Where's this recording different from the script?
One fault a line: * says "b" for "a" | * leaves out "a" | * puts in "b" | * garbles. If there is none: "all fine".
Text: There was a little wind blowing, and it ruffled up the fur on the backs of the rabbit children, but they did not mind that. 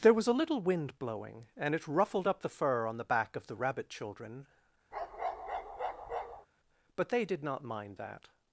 * says "back" for "backs"